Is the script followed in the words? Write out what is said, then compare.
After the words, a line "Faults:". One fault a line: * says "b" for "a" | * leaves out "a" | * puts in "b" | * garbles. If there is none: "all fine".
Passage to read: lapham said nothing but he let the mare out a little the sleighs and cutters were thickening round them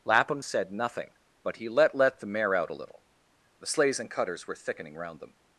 lapham said nothing but he let let the mare out a little the sleighs and cutters were thickening round them
Faults:
* puts in "let"